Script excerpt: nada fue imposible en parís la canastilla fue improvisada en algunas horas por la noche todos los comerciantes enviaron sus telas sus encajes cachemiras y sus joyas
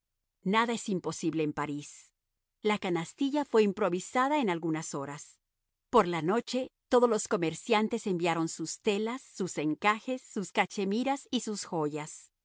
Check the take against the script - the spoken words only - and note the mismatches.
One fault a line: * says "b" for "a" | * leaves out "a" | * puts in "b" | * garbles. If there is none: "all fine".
* says "es" for "fue"
* puts in "sus"